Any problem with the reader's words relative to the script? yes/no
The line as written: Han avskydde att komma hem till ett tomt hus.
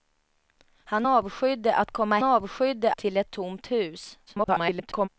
yes